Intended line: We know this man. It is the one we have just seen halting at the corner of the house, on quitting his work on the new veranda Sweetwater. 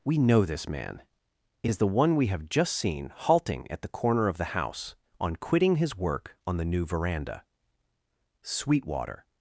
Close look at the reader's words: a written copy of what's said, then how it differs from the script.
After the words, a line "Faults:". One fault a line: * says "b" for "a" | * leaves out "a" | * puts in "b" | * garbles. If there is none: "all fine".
We know this man. It is the one we have just seen halting at the corner of the house, on quitting his work on the new veranda Sweetwater.
Faults:
all fine